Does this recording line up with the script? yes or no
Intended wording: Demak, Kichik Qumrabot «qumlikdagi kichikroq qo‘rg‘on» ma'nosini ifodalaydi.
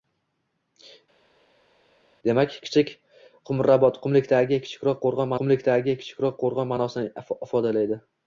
no